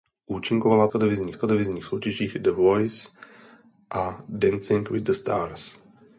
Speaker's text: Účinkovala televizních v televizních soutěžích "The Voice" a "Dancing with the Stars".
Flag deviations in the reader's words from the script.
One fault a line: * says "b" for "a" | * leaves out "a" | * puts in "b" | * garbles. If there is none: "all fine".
all fine